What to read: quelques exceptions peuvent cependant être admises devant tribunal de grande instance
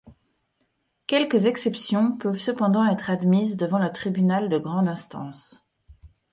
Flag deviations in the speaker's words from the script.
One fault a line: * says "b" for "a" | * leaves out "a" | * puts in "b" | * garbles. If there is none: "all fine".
* puts in "le"